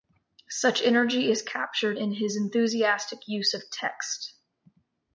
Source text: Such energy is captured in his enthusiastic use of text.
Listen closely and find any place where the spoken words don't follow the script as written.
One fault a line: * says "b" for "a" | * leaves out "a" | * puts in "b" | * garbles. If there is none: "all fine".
all fine